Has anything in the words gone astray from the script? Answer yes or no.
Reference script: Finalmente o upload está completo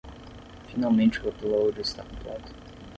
no